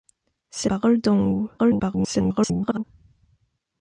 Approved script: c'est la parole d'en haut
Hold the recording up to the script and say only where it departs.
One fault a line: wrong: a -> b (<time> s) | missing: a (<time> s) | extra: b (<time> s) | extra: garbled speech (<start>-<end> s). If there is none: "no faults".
missing: la (0.7 s)
extra: garbled speech (1.6-2.8 s)